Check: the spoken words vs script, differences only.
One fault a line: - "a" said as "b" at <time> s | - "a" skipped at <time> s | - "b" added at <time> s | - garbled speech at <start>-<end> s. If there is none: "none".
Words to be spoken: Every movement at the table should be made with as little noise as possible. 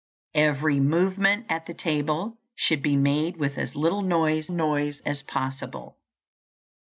- "noise" added at 4.5 s